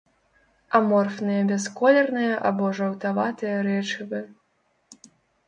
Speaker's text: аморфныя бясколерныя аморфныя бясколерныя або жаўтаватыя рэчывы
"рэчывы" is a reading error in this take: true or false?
false